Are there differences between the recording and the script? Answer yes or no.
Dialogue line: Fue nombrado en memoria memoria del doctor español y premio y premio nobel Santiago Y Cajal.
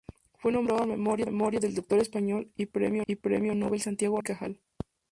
no